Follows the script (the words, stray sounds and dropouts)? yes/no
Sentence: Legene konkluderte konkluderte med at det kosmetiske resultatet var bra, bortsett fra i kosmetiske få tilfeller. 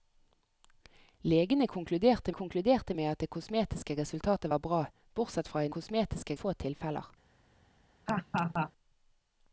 no